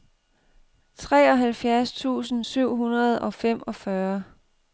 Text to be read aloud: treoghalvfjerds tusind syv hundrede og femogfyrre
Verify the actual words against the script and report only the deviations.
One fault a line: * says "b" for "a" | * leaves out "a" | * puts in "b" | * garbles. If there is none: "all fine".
all fine